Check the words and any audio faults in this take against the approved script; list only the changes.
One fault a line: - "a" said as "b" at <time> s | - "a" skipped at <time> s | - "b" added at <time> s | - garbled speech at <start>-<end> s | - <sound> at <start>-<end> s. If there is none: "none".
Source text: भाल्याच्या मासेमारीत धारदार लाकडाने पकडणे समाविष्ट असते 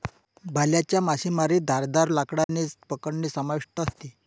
- dropout at 2.4-2.5 s